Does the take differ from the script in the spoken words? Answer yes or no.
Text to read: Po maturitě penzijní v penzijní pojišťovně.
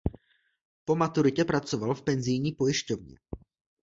yes